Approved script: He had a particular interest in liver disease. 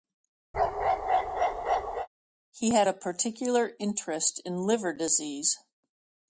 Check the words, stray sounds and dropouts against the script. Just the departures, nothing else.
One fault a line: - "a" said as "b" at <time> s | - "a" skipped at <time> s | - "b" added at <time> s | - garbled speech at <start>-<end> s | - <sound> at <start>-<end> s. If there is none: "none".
- bark at 0.5-2.1 s